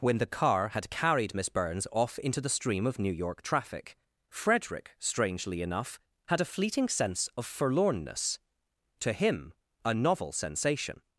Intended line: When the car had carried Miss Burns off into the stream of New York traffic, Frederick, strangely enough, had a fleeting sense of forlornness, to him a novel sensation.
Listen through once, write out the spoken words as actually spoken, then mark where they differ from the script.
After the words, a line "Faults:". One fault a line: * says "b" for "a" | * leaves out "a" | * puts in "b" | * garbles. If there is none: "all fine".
When the car had carried Miss Burns off into the stream of New York traffic, Frederick, strangely enough, had a fleeting sense of forlornness, to him a novel sensation.
Faults:
all fine